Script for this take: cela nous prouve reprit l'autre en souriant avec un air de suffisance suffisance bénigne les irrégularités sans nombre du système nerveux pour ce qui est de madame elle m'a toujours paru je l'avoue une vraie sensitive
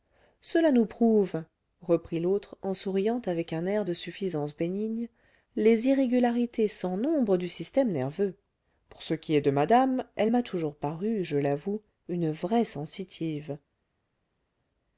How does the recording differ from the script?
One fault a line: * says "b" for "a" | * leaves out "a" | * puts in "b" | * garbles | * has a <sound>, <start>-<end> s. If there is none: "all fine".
* leaves out "suffisance"